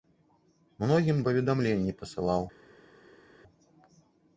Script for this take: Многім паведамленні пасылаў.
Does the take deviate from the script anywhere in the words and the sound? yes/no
no